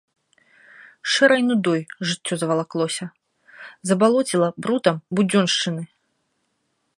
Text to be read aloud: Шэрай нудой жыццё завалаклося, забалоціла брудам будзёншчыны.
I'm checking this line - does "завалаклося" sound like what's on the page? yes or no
yes